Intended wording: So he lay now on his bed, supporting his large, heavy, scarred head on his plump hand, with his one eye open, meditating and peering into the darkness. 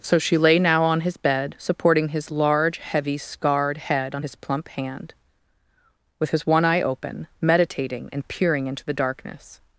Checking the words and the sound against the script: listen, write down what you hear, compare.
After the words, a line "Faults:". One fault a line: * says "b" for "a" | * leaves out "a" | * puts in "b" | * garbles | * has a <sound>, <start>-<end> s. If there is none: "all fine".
So she lay now on his bed, supporting his large, heavy, scarred head on his plump hand, with his one eye open, meditating and peering into the darkness.
Faults:
* says "she" for "he"